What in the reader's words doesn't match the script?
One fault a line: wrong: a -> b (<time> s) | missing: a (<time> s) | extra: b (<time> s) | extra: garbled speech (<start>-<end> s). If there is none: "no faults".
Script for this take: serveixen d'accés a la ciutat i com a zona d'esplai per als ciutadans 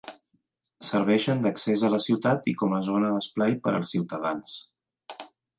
no faults